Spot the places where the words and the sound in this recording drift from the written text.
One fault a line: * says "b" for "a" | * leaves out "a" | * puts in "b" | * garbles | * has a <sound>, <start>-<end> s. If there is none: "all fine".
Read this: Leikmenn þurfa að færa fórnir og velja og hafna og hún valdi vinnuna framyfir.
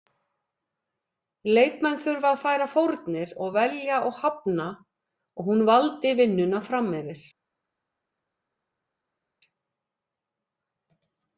all fine